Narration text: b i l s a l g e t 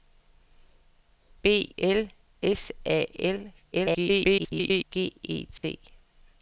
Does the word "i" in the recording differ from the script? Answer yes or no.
yes